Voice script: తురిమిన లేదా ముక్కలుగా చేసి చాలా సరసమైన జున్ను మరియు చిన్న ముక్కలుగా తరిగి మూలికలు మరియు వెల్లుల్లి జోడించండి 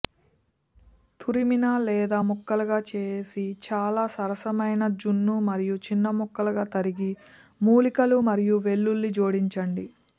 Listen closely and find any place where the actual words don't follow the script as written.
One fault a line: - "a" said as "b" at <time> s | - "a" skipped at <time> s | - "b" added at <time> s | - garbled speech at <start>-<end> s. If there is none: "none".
none